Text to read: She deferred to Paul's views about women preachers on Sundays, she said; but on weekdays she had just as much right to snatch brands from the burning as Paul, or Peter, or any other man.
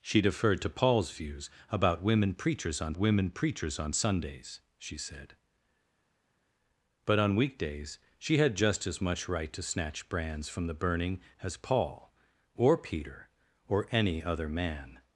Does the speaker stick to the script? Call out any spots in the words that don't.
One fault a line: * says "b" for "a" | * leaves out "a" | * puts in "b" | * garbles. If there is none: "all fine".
* puts in "women preachers on"